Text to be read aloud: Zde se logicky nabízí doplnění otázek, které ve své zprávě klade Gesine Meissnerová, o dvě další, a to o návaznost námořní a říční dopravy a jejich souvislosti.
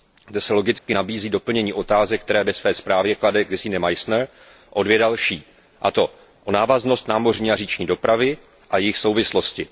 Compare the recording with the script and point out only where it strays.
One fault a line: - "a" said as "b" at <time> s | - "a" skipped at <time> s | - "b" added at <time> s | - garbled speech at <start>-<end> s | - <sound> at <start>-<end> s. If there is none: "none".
- dropout at 0.8-0.9 s